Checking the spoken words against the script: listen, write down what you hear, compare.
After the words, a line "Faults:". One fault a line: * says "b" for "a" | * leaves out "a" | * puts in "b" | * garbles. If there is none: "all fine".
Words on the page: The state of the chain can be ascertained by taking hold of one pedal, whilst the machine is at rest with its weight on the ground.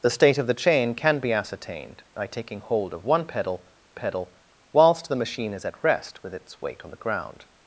The state of the chain can be ascertained by taking hold of one pedal pedal, whilst the machine is at rest with its weight on the ground.
Faults:
* puts in "pedal"